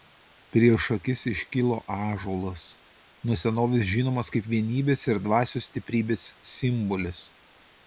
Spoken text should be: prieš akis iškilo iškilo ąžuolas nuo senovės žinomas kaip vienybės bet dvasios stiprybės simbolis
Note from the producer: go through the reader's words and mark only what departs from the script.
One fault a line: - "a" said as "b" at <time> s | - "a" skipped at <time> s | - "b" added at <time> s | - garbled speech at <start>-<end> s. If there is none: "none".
- "iškilo" skipped at 1.8 s
- "bet" said as "ir" at 5.1 s